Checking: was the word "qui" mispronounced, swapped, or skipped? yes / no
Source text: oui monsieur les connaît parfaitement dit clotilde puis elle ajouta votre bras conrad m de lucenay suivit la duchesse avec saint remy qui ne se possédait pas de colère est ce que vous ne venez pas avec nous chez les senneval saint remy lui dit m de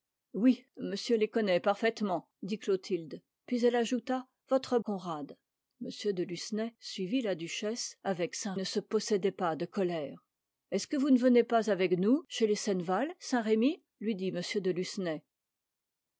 yes